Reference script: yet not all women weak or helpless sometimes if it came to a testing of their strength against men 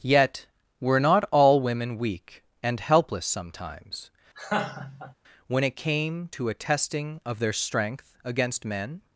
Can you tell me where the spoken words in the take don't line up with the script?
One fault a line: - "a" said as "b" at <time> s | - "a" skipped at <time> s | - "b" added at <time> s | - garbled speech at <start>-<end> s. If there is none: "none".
- "were" added at 0.8 s
- "or" said as "and" at 2.6 s
- "if" said as "when" at 5.5 s